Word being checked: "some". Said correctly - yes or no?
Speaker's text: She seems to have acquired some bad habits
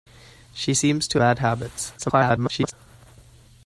no